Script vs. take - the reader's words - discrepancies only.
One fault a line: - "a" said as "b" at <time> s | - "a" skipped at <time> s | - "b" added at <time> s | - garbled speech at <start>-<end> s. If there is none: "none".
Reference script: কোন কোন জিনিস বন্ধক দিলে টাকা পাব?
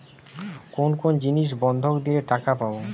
none